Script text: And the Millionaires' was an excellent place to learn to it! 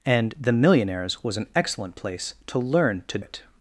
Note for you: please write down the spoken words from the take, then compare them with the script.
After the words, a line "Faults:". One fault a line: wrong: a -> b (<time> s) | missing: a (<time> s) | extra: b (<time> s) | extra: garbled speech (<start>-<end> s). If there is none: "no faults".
And the Millionaires' was an excellent place to learn to it!
Faults:
no faults